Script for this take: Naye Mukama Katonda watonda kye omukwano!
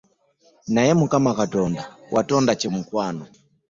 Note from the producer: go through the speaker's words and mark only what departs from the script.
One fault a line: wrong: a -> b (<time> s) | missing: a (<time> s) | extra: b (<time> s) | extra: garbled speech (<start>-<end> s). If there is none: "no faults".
no faults